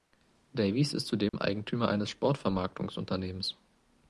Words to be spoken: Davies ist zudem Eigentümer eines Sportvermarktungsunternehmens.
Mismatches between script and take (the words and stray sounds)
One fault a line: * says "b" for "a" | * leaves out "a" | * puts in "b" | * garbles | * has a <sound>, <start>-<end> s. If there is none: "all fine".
* has a dropout, 1.3-1.3 s